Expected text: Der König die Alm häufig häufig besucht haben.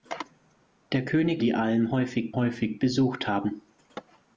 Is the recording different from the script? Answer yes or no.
no